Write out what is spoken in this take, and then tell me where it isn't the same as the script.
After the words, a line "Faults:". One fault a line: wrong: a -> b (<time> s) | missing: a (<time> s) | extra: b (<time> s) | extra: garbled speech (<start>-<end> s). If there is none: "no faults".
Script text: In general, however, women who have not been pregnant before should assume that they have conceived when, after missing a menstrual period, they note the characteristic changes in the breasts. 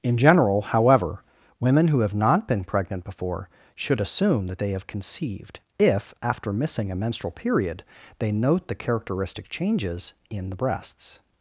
In general, however, women who have not been pregnant before should assume that they have conceived if, after missing a menstrual period, they note the characteristic changes in the breasts.
Faults:
wrong: when -> if (5.8 s)